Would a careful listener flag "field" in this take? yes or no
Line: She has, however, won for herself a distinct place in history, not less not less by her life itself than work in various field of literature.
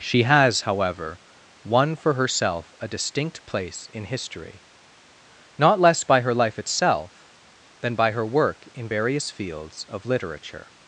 yes